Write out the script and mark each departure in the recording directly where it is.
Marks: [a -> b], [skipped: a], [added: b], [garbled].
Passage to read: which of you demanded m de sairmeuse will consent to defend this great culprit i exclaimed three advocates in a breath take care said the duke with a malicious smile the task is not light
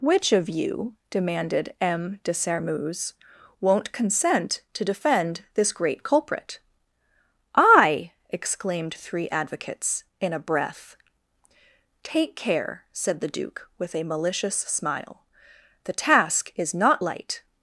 which of you demanded m de sairmeuse [will -> won't] consent to defend this great culprit i exclaimed three advocates in a breath take care said the duke with a malicious smile the task is not light